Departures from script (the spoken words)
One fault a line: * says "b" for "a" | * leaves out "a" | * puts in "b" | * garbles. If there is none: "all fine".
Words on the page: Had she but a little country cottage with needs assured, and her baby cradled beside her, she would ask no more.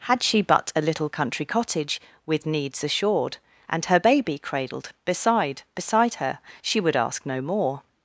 * puts in "beside"